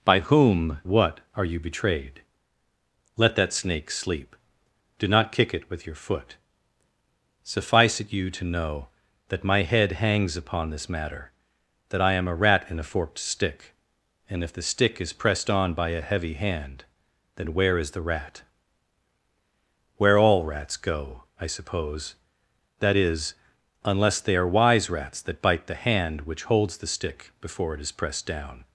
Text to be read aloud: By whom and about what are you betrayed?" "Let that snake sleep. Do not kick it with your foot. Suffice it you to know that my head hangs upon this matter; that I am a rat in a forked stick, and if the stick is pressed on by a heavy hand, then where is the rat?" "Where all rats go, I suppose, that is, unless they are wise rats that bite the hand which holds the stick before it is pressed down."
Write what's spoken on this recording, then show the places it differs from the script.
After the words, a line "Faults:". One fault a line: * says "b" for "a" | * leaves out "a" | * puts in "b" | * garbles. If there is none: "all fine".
By whom what are you betrayed?" "Let that snake sleep. Do not kick it with your foot. Suffice it you to know that my head hangs upon this matter; that I am a rat in a forked stick, and if the stick is pressed on by a heavy hand, then where is the rat?" "Where all rats go, I suppose, that is, unless they are wise rats that bite the hand which holds the stick before it is pressed down."
Faults:
* leaves out "and about"